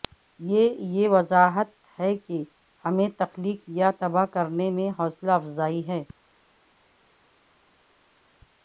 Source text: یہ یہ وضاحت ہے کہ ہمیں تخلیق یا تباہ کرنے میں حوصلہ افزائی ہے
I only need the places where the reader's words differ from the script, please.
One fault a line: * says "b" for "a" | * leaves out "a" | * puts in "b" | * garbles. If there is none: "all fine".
all fine